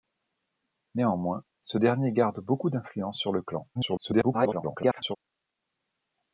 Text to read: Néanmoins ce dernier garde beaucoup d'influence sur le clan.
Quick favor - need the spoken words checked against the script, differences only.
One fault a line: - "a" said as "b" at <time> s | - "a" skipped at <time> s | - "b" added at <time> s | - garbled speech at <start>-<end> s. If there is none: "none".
- garbled speech at 3.7-5.2 s